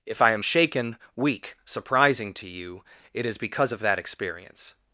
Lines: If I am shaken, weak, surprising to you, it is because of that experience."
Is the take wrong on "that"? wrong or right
right